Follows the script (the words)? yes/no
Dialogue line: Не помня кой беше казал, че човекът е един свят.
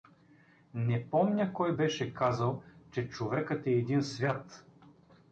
yes